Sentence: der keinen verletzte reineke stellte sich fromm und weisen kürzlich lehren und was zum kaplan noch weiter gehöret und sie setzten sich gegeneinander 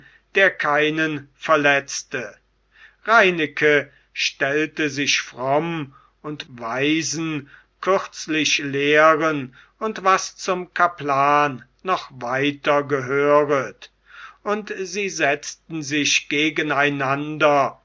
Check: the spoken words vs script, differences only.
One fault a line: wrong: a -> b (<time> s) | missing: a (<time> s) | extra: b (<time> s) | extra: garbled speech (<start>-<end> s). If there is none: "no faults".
no faults